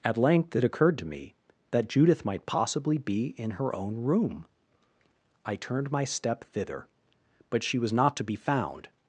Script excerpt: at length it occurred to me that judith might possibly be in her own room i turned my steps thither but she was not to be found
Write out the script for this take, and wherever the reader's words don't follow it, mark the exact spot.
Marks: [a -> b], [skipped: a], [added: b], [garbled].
at length it occurred to me that judith might possibly be in her own room i turned my [steps -> step] thither but she was not to be found